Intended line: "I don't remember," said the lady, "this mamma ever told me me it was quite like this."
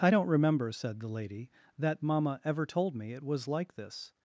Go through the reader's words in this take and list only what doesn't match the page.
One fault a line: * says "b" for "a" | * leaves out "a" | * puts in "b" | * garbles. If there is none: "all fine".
* says "that" for "this"
* leaves out "me"
* leaves out "quite"